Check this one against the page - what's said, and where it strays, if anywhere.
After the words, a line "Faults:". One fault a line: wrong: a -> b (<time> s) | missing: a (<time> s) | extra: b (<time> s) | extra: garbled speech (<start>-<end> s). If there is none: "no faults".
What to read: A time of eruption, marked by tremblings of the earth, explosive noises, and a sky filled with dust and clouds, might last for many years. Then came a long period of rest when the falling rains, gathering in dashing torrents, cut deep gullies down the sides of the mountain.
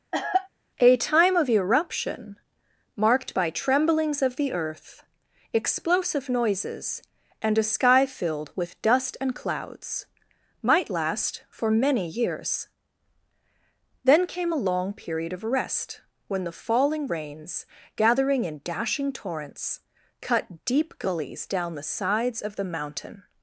A time of eruption, marked by tremblings of the earth, explosive noises, and a sky filled with dust and clouds, might last for many years. Then came a long period of rest when the falling rains, gathering in dashing torrents, cut deep gullies down the sides of the mountain.
Faults:
no faults